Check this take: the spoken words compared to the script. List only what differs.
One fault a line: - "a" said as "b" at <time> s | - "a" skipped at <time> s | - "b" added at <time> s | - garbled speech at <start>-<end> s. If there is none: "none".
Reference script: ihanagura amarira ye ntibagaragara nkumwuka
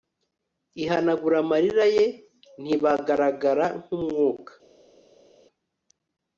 none